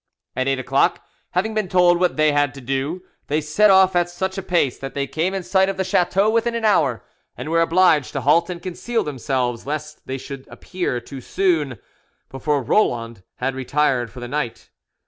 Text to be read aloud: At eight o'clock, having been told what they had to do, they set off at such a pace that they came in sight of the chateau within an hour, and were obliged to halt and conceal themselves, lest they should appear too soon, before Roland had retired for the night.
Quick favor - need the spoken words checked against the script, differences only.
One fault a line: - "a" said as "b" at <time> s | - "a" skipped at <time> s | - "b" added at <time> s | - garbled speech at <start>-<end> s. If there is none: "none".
none